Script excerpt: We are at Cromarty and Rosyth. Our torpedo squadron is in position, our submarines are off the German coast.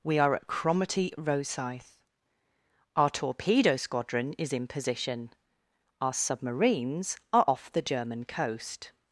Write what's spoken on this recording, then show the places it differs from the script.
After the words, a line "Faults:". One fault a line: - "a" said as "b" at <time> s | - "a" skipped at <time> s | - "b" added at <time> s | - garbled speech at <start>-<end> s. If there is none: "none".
We are at Cromarty Rosyth. Our torpedo squadron is in position, our submarines are off the German coast.
Faults:
- "and" skipped at 1.1 s